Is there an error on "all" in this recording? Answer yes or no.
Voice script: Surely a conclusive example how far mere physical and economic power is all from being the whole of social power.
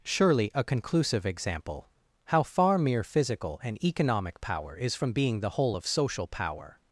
yes